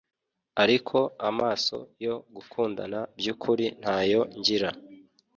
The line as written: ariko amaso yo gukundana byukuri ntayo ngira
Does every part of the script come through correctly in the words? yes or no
yes